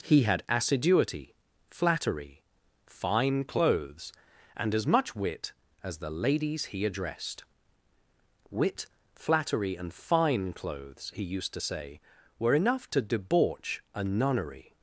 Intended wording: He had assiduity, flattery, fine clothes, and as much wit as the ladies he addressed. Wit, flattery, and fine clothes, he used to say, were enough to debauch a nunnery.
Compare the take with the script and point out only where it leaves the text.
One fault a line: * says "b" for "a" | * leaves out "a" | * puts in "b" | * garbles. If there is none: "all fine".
all fine